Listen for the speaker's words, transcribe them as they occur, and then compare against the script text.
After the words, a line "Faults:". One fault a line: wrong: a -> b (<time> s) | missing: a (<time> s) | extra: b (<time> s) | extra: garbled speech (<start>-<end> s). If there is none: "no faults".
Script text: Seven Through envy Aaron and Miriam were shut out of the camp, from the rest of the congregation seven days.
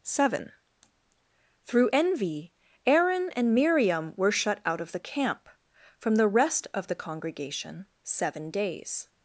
Seven Through envy Aaron and Miriam were shut out of the camp, from the rest of the congregation seven days.
Faults:
no faults